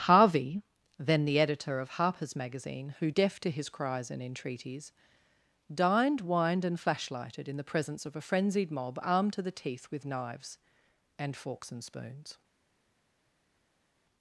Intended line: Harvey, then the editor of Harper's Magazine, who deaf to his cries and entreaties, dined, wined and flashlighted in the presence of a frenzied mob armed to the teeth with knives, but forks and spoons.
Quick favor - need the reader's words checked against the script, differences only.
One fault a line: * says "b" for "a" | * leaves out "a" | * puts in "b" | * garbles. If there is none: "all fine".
* says "and" for "but"